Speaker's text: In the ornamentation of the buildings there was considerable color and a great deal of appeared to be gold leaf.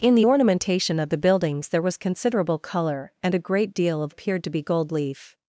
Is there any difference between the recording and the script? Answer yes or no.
no